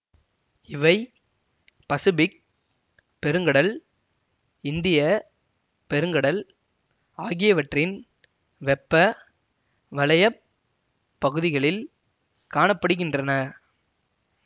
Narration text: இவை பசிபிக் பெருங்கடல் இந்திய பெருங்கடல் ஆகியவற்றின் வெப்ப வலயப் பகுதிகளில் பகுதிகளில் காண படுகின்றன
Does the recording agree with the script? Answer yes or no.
no